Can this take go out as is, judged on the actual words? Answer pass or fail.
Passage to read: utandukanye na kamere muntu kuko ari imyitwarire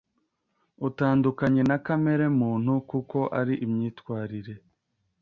pass